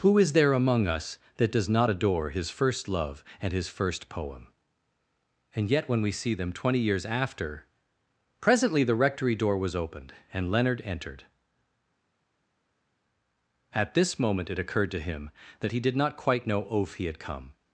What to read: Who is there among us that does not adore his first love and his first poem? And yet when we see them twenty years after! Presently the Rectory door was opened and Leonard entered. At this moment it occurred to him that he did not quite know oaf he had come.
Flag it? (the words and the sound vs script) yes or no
no